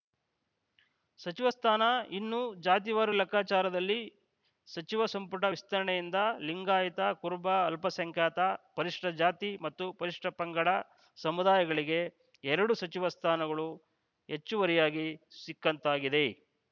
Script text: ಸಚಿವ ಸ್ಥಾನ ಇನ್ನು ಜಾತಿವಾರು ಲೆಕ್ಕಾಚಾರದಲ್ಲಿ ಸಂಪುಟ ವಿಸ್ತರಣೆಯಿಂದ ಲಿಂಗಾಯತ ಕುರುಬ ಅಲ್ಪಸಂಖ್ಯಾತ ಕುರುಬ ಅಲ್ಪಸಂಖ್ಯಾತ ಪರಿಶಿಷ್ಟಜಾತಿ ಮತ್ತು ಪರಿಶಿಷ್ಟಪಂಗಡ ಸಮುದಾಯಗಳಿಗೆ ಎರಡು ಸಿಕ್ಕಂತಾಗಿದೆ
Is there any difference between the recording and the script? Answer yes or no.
yes